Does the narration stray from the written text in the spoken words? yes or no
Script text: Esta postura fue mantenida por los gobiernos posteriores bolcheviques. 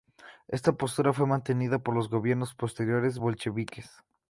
no